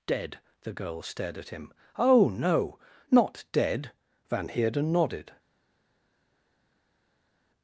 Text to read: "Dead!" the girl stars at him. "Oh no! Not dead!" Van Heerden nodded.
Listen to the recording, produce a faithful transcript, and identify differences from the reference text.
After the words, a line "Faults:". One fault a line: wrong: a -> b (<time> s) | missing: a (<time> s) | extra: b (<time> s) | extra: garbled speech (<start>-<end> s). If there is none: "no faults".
"Dead!" the girl stared at him. "Oh no! Not dead!" Van Heerden nodded.
Faults:
wrong: stars -> stared (1.0 s)